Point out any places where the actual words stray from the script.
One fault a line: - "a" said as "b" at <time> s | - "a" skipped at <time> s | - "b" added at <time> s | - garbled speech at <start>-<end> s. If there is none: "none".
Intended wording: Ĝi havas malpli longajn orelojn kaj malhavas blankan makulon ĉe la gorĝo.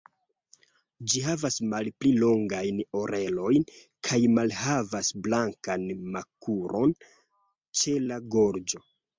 none